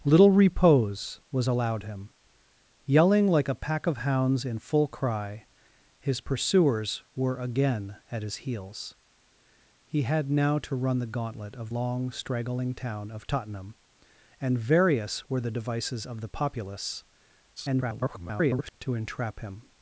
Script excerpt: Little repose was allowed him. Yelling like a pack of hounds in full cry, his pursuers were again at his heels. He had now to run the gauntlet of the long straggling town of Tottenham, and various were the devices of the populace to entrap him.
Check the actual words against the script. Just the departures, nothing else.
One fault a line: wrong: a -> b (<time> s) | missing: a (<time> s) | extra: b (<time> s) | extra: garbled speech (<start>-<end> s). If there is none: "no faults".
missing: the (11.7 s)
extra: garbled speech (17.6-18.7 s)